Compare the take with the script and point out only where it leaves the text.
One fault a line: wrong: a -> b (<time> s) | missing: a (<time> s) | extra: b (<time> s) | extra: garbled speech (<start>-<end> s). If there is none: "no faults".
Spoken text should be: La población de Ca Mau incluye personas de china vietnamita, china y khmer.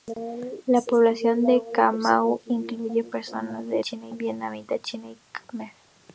no faults